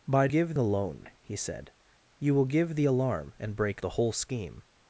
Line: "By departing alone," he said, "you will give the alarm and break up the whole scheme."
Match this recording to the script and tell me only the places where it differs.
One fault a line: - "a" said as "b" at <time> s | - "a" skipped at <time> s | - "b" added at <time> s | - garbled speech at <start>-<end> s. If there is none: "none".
- "departing" said as "give" at 0.3 s
- "up" skipped at 3.8 s